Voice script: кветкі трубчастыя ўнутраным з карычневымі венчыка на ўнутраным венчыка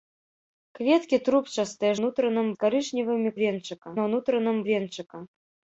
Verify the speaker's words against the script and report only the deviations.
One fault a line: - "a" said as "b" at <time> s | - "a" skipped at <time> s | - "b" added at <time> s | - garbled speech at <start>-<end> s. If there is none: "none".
none